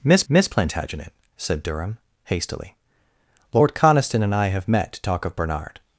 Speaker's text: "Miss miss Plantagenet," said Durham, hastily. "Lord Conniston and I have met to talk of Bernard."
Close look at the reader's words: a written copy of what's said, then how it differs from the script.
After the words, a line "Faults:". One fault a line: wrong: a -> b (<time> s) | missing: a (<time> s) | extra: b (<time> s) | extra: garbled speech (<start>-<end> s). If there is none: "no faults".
"Miss miss Plantagenet," said Durham, hastily. "Lord Conniston and I have met to talk of Bernard."
Faults:
no faults